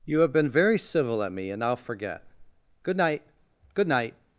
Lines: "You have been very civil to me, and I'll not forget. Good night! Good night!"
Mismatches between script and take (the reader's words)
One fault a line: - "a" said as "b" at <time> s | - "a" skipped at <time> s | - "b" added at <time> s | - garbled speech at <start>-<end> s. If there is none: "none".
- "to" said as "at" at 1.2 s
- "not" skipped at 1.8 s